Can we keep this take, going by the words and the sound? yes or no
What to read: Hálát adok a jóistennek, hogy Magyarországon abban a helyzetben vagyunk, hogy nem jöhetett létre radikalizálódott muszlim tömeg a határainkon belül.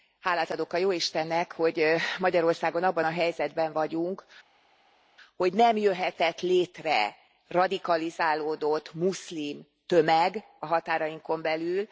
yes